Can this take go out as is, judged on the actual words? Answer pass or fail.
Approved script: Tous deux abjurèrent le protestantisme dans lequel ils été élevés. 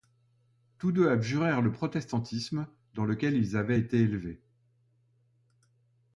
fail